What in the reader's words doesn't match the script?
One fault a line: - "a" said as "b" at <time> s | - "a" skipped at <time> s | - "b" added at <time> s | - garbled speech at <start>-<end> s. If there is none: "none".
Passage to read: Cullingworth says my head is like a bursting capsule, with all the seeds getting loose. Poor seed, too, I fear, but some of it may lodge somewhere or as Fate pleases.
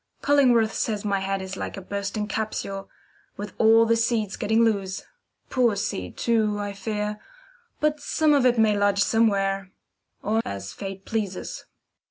none